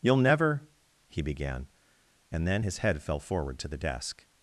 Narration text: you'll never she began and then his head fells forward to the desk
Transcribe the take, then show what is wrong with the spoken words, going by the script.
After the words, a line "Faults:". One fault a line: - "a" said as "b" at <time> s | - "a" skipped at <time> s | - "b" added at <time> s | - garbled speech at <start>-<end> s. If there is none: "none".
you'll never he began and then his head fell forward to the desk
Faults:
- "she" said as "he" at 1.1 s
- "fells" said as "fell" at 3.0 s